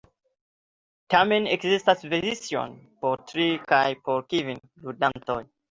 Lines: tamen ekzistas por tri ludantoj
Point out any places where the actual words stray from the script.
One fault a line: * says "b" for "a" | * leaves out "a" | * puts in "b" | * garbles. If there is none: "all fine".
* puts in "versioj"
* puts in "kaj por kvin"